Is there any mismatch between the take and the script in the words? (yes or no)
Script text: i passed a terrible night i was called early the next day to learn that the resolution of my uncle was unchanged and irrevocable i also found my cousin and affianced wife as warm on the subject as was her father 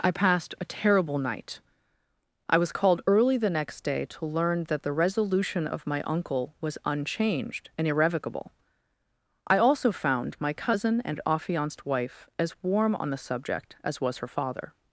no